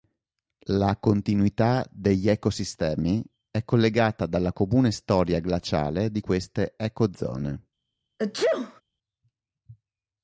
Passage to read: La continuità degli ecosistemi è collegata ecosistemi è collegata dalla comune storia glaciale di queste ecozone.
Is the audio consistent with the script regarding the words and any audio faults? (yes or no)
no